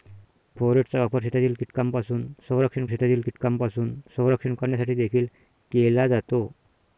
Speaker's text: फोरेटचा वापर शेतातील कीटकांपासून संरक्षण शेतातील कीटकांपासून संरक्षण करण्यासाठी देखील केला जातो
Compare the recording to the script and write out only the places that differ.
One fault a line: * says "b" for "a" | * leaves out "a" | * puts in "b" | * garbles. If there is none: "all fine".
all fine